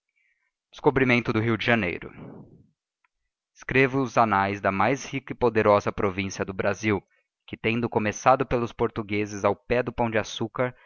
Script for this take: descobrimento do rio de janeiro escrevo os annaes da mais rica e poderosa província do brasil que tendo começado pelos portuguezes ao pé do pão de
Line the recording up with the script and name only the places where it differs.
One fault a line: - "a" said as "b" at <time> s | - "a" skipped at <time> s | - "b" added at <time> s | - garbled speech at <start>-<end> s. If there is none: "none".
none